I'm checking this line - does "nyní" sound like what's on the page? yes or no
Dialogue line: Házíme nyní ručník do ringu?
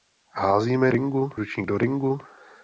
no